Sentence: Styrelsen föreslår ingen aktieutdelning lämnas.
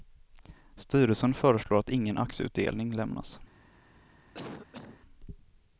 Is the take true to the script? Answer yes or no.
no